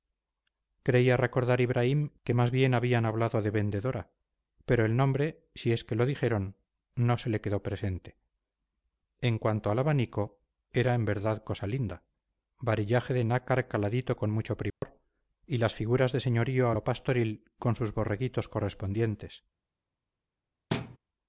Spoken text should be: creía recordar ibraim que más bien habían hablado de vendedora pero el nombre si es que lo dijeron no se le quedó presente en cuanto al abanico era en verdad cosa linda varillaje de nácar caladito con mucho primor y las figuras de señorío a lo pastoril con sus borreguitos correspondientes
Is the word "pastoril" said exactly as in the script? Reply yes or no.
yes